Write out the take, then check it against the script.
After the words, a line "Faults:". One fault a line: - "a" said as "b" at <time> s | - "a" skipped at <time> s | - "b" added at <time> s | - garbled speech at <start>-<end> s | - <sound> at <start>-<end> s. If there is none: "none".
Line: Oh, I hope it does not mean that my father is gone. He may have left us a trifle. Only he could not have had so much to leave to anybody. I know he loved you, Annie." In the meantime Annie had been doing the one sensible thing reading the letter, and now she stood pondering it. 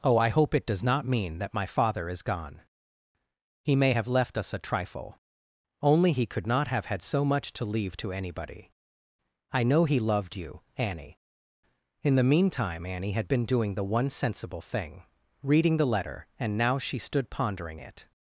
Oh, I hope it does not mean that my father is gone. He may have left us a trifle. Only he could not have had so much to leave to anybody. I know he loved you, Annie." In the meantime Annie had been doing the one sensible thing reading the letter, and now she stood pondering it.
Faults:
none